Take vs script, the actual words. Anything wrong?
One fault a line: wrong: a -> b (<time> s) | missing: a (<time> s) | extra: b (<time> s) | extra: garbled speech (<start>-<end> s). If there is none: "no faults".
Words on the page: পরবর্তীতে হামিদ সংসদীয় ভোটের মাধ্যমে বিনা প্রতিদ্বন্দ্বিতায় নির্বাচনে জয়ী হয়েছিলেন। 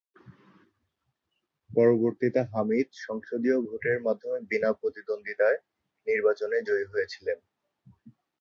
no faults